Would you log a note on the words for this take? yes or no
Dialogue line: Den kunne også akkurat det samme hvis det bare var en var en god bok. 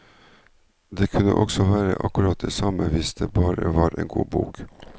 yes